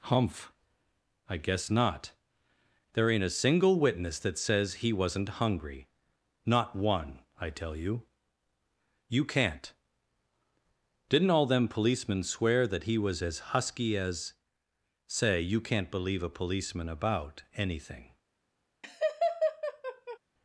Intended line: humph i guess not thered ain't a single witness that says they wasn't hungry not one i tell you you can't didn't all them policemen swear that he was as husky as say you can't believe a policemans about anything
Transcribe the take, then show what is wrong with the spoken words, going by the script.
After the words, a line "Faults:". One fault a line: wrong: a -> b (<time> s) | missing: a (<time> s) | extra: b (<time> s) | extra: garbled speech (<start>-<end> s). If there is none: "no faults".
humph i guess not there ain't a single witness that says he wasn't hungry not one i tell you you can't didn't all them policemen swear that he was as husky as say you can't believe a policeman about anything
Faults:
wrong: thered -> there (2.9 s)
wrong: they -> he (4.8 s)
wrong: policemans -> policeman (16.3 s)